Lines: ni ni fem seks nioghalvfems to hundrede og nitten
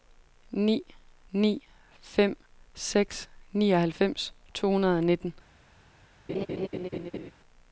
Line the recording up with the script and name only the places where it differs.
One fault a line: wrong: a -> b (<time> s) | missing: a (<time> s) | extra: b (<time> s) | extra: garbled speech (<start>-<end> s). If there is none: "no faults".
no faults